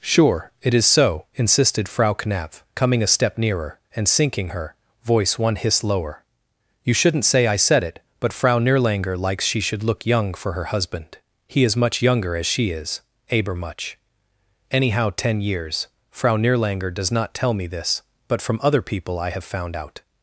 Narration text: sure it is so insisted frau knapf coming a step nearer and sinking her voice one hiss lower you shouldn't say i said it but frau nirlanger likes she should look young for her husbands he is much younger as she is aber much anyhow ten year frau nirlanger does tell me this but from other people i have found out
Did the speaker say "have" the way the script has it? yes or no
yes